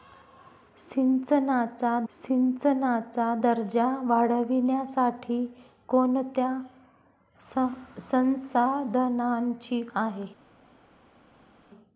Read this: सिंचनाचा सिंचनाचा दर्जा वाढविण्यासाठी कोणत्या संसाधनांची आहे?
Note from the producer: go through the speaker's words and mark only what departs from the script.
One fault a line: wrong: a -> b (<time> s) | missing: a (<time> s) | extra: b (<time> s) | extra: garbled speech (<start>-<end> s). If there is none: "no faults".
no faults